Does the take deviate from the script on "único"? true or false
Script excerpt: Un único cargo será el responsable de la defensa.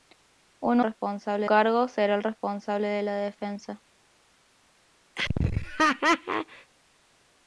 true